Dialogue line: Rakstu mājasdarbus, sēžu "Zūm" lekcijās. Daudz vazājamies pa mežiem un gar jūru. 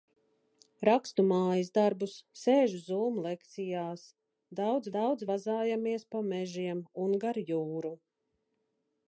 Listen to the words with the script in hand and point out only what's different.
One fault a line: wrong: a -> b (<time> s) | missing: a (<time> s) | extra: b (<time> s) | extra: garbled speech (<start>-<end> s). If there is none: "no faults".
extra: daudz (5.0 s)